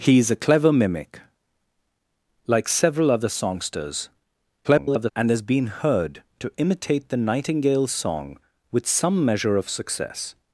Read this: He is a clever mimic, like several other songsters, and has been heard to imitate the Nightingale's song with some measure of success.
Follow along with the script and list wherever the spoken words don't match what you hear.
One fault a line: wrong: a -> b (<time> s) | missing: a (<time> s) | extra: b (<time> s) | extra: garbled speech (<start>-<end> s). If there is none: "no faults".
extra: garbled speech (4.6-5.1 s)